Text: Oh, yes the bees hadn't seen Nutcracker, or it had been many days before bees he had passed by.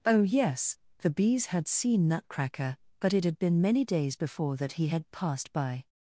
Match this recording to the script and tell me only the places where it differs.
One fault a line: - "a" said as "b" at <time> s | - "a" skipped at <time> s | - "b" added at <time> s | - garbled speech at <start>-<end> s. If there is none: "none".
- "hadn't" said as "had" at 1.5 s
- "or" said as "but" at 3.0 s
- "bees" said as "that" at 4.6 s